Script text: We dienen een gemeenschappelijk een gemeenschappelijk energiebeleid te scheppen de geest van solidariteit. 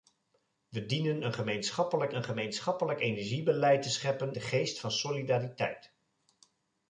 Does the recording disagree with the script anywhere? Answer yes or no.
no